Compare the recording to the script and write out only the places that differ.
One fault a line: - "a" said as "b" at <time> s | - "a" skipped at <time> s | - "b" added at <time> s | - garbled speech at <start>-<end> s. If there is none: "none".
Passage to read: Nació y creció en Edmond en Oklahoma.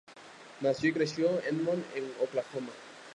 - "en" skipped at 1.3 s